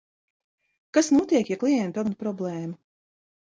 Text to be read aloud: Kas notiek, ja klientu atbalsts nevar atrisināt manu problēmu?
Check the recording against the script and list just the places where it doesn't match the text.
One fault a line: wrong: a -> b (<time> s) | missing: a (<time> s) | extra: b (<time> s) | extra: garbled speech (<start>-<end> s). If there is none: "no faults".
missing: atbalsts nevar atrisināt (2.0 s)